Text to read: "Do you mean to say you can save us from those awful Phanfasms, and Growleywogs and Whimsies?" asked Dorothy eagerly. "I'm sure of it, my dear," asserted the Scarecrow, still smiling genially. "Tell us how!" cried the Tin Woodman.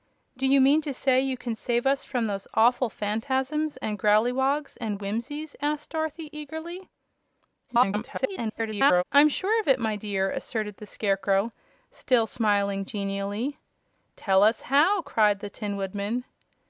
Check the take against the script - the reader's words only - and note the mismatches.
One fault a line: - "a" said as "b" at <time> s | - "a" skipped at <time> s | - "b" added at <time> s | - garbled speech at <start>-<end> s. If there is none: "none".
- garbled speech at 7.7-9.0 s